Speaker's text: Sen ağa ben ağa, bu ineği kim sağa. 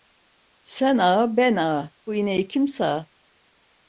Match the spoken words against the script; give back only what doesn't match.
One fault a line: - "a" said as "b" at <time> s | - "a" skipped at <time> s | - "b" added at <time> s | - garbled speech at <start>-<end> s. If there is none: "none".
none